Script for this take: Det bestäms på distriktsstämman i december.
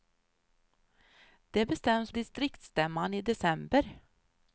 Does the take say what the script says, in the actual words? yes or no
no